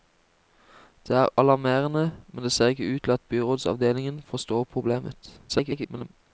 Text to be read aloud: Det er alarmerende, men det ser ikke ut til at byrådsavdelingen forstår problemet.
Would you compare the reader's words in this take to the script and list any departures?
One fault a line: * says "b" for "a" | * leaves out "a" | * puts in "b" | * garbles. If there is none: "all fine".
* garbles